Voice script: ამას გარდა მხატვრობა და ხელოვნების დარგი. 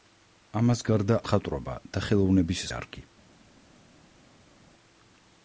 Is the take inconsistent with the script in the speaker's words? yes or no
no